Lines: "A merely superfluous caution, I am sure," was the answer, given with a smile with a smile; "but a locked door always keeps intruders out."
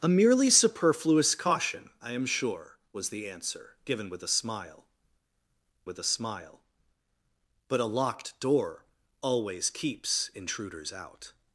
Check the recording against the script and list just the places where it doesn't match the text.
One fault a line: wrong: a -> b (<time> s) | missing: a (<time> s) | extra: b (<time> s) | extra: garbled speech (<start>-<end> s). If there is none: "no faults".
no faults